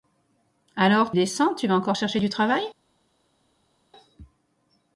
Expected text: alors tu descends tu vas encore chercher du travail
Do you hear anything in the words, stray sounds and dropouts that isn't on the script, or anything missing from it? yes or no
yes